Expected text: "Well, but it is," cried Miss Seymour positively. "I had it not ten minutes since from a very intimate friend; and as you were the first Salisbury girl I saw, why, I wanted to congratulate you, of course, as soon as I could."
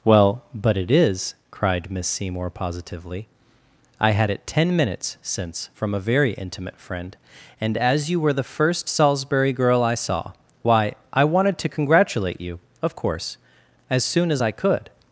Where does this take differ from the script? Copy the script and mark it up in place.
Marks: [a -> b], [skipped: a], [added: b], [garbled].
"Well, but it is," cried Miss Seymour positively. "I had it [skipped: not] ten minutes since from a very intimate friend; and as you were the first Salisbury girl I saw, why, I wanted to congratulate you, of course, as soon as I could."